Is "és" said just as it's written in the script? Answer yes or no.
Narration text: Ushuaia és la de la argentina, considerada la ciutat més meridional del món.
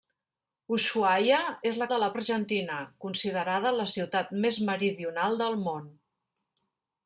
yes